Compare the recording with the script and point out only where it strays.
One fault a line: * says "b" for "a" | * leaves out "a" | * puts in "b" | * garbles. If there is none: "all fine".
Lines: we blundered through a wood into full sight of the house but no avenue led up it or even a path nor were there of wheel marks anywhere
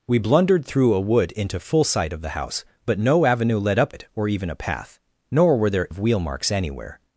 all fine